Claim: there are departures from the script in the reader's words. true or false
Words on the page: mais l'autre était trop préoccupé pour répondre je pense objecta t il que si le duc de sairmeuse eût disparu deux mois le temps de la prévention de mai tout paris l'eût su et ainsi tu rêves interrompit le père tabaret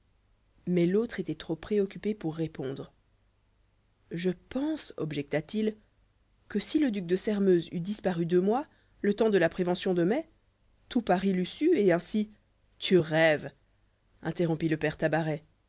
false